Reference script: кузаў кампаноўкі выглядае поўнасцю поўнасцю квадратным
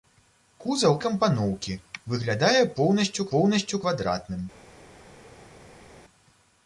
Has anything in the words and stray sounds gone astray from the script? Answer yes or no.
no